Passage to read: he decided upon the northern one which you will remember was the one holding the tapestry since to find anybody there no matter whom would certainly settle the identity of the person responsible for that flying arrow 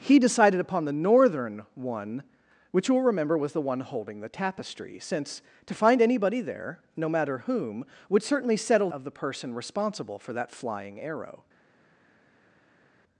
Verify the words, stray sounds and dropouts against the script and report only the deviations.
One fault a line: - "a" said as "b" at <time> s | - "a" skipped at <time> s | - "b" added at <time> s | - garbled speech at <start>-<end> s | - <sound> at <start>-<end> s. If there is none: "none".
- "the identity" skipped at 8.9 s